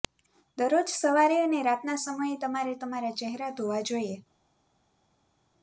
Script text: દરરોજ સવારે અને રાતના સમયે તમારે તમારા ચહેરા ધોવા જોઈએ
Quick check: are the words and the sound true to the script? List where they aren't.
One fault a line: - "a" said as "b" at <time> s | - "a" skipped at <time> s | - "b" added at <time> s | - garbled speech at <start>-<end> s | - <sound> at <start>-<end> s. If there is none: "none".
none